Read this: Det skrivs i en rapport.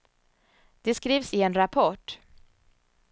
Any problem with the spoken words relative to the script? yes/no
no